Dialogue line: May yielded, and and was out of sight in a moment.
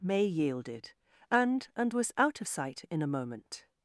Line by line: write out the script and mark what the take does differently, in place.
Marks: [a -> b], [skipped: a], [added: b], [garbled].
May yielded, and and was out of sight in a moment.